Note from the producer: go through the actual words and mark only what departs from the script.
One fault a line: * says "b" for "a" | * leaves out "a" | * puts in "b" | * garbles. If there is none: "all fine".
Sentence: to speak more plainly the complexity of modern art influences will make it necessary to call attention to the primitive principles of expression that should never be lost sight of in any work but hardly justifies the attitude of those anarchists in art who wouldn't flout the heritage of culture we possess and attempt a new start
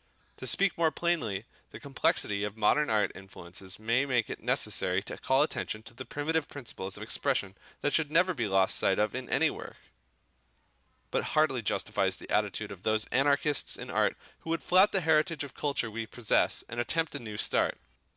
* says "may" for "will"
* says "would" for "wouldn't"